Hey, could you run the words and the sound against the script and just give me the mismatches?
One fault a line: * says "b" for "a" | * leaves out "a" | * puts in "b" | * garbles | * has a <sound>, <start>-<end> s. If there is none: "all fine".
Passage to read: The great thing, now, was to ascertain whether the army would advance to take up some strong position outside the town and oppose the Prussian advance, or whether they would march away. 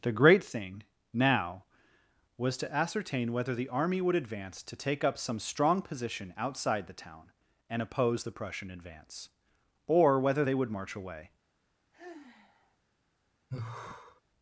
* has a sigh, 11.9-12.8 s
* has a sigh, 13.5-14.2 s